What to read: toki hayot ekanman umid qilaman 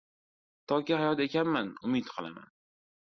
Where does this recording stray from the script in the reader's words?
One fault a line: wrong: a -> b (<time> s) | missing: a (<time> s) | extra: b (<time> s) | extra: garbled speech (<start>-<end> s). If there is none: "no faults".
no faults